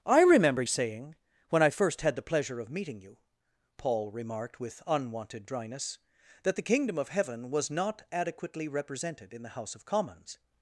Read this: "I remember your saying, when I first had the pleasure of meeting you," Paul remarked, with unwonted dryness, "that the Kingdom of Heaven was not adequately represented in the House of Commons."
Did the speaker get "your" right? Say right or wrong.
wrong